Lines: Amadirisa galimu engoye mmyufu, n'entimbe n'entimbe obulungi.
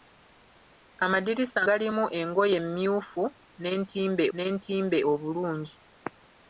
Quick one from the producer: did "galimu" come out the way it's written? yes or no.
yes